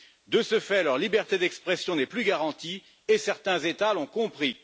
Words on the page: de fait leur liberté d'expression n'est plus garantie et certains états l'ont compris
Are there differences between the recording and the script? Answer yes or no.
yes